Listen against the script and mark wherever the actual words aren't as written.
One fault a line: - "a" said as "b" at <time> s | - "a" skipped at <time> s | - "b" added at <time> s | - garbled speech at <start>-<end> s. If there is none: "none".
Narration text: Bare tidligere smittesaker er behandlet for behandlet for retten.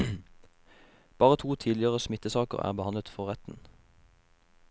- "to" added at 1.4 s
- "behandlet for" skipped at 3.3 s